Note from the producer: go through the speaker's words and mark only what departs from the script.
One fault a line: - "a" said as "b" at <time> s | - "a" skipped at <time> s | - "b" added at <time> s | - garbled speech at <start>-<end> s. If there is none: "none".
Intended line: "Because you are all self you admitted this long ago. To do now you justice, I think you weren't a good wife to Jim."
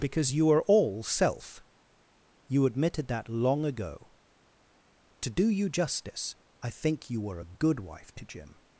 - "this" said as "that" at 3.1 s
- "now" skipped at 5.5 s
- "weren't" said as "were" at 7.2 s